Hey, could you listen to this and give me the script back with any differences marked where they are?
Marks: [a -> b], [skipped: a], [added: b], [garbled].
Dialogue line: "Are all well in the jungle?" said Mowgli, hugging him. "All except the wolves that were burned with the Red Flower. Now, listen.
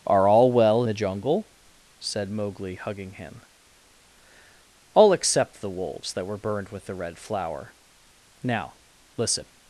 "Are all well [skipped: in] the jungle?" said Mowgli, hugging him. "All except the wolves that were burned with the Red Flower. Now, listen.